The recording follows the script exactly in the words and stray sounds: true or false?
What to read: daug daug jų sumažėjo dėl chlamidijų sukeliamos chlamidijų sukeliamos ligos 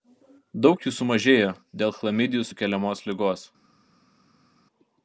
false